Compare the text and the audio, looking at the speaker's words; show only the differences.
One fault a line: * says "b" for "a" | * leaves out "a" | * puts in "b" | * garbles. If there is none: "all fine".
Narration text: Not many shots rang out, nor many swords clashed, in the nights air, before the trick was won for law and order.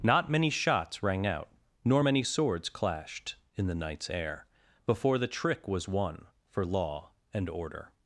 all fine